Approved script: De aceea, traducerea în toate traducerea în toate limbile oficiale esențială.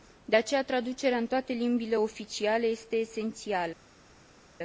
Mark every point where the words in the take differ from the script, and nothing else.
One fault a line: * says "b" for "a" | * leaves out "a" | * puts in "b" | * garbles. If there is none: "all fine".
* leaves out "traducerea în toate"
* puts in "este"